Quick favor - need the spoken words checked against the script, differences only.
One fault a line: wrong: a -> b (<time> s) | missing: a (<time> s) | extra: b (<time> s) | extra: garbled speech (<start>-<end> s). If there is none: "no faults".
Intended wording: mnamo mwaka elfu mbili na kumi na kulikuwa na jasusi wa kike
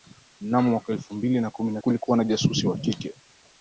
no faults